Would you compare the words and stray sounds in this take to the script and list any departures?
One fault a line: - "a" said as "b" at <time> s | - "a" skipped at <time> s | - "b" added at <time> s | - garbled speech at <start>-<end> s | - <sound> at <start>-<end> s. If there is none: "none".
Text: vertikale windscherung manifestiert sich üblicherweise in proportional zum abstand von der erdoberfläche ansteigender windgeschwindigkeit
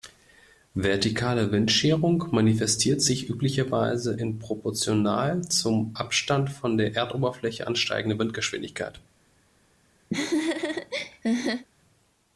- laugh at 10.1-11.7 s